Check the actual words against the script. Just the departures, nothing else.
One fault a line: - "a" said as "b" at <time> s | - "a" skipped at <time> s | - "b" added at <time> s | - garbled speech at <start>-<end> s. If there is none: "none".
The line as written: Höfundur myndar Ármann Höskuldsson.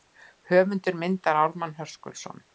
none